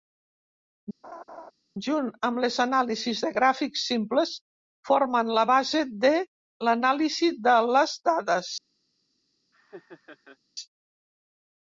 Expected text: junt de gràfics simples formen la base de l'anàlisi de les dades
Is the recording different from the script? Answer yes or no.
yes